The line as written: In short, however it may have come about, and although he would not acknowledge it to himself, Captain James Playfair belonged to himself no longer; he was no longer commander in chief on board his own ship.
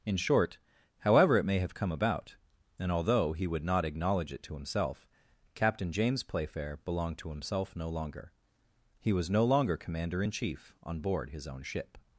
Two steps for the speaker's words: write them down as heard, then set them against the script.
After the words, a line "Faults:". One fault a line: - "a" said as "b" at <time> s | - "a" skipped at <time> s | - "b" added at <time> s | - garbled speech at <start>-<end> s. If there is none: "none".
In short, however it may have come about, and although he would not acknowledge it to himself, Captain James Playfair belonged to himself no longer; he was no longer commander in chief on board his own ship.
Faults:
none